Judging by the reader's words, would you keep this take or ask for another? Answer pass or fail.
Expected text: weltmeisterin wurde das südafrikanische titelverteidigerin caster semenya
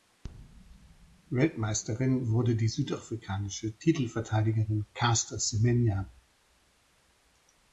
fail